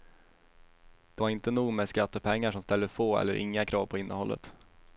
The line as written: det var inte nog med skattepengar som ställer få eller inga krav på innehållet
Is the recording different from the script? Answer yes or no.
no